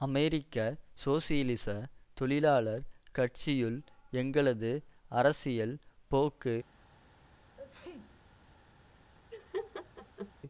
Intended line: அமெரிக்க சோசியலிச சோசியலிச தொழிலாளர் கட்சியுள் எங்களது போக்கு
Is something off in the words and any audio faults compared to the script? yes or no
yes